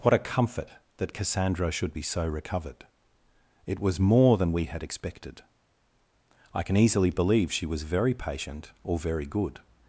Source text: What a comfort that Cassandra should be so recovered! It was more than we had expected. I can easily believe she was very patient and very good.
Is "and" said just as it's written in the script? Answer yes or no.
no